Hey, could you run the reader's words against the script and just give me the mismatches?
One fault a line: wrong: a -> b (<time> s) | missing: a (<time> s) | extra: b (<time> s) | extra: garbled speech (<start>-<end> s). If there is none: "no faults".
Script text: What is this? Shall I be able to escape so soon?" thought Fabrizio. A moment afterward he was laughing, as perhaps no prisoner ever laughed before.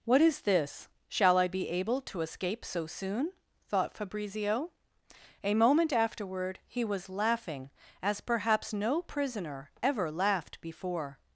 no faults